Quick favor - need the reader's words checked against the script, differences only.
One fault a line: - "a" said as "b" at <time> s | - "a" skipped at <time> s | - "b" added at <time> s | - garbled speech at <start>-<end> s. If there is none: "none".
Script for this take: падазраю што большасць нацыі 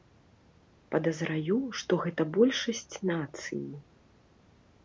- "гэта" added at 2.0 s